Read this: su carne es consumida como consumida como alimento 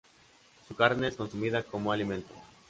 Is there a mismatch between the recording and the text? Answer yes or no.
yes